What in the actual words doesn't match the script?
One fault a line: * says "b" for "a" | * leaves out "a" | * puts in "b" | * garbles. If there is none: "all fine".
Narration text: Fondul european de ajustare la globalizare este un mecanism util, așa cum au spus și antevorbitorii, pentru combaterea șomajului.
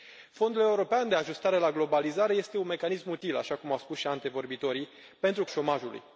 * leaves out "combaterea"